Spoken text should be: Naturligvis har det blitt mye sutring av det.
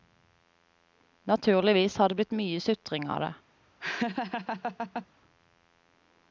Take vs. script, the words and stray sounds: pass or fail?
fail